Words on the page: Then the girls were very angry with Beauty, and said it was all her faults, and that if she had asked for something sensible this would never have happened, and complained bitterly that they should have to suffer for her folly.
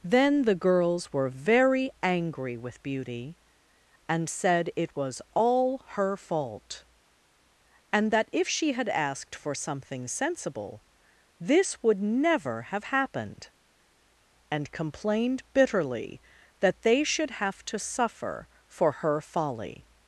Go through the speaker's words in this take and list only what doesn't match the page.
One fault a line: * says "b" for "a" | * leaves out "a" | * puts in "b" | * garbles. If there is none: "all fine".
* says "fault" for "faults"